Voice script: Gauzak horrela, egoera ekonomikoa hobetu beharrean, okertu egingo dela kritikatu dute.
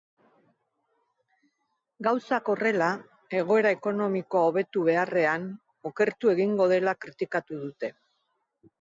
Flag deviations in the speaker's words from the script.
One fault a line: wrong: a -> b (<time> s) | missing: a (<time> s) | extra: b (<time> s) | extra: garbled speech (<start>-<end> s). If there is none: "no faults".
no faults